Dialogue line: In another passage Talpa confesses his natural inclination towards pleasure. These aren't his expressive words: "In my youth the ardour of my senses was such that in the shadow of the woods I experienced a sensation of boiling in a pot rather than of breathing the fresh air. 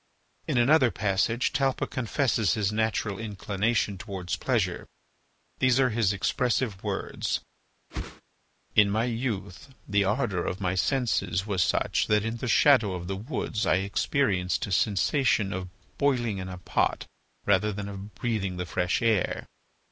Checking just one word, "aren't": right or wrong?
wrong